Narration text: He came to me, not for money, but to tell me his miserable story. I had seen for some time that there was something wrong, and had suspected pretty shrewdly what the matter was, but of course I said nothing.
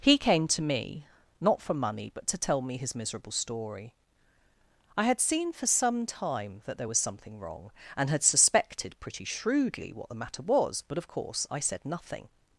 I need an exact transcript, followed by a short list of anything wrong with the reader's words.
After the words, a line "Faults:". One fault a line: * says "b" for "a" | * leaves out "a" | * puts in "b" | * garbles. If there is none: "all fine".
He came to me, not for money, but to tell me his miserable story. I had seen for some time that there was something wrong, and had suspected pretty shrewdly what the matter was, but of course I said nothing.
Faults:
all fine